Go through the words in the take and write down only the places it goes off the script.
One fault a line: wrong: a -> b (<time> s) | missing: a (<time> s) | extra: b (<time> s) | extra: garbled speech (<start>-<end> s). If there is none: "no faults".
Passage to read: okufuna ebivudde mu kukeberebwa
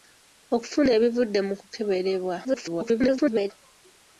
extra: garbled speech (2.4-3.5 s)